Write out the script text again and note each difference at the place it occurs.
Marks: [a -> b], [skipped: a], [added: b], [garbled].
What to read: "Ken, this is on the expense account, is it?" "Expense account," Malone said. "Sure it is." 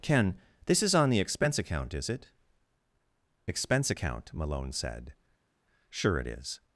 "Ken, this is on the expense account, is it?" "Expense account," Malone said. "Sure it is."